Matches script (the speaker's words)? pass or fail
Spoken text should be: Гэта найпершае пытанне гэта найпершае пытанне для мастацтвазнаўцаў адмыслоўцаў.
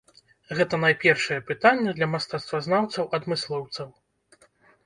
fail